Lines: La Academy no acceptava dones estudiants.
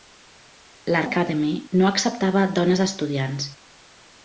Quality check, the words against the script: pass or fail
pass